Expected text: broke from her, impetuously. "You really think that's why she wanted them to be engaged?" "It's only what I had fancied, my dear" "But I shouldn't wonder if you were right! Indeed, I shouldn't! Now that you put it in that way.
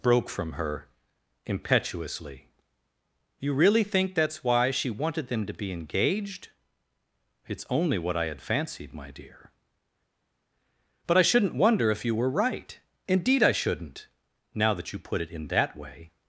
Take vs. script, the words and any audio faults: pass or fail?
pass